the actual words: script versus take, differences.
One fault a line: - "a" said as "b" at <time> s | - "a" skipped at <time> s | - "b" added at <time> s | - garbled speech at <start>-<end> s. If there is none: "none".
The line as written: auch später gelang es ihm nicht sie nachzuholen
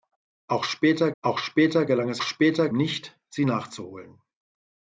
- "auch später" added at 1.2 s
- "ihm" said as "später" at 2.2 s